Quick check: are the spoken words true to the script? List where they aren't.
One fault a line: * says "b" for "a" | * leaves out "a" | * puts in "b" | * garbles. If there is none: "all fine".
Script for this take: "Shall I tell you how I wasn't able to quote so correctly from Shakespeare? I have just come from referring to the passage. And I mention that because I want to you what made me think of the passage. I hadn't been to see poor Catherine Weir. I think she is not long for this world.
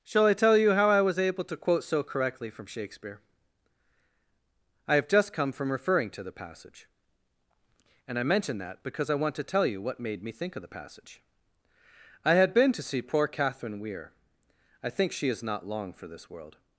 * says "was" for "wasn't"
* puts in "tell"
* says "had" for "hadn't"